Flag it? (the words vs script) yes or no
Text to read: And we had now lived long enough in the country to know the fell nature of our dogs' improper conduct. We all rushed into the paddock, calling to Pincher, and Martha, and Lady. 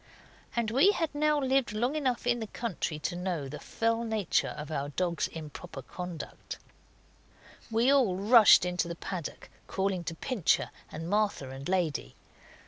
no